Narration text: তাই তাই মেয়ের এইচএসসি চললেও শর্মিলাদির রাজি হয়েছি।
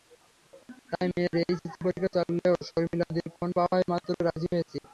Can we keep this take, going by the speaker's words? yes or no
no